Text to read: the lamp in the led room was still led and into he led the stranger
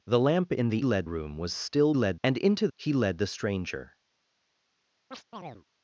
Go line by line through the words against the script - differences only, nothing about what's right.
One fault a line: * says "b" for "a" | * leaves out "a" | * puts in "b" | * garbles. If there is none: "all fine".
all fine